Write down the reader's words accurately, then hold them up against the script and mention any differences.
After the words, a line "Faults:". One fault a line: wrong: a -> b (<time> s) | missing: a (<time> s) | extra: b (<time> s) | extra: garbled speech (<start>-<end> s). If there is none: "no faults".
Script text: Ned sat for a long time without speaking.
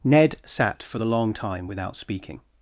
Ned sat for the long time without speaking.
Faults:
wrong: a -> the (1.0 s)